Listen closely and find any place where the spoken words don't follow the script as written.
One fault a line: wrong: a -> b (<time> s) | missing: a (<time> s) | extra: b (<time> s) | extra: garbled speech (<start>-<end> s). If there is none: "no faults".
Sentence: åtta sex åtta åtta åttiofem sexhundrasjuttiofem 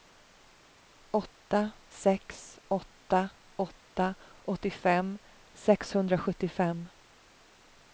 no faults